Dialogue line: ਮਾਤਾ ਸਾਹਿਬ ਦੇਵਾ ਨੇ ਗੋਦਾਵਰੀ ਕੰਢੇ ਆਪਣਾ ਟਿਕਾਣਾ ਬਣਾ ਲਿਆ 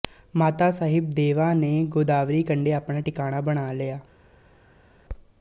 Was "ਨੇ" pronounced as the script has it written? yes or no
yes